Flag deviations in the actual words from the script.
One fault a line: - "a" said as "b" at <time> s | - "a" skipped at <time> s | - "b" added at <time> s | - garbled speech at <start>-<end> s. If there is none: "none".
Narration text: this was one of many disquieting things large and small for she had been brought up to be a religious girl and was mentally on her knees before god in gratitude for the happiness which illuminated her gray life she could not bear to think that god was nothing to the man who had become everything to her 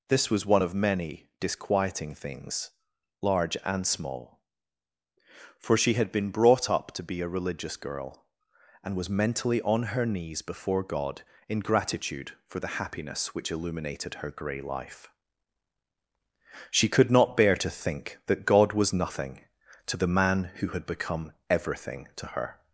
none